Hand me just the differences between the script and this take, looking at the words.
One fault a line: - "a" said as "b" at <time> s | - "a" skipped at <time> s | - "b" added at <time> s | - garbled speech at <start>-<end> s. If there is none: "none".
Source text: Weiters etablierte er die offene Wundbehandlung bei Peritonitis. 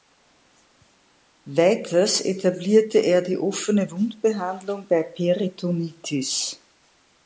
none